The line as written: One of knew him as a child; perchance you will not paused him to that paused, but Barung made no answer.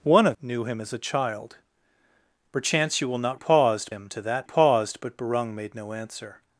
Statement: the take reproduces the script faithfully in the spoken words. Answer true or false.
true